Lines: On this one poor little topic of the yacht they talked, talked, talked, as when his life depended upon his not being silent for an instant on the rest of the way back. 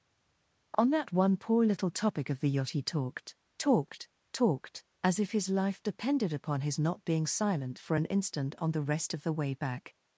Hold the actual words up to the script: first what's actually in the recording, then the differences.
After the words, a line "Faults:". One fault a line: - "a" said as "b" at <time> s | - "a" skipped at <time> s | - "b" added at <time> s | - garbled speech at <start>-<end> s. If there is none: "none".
On that one poor little topic of the yacht he talked, talked, talked, as if his life depended upon his not being silent for an instant on the rest of the way back.
Faults:
- "this" said as "that" at 0.9 s
- "they" said as "he" at 2.7 s
- "when" said as "if" at 5.2 s